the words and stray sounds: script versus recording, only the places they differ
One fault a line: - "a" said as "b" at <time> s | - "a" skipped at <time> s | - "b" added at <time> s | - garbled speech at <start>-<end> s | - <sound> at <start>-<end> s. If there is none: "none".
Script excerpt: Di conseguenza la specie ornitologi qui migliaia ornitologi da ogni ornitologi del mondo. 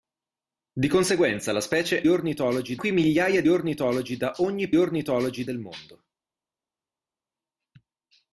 none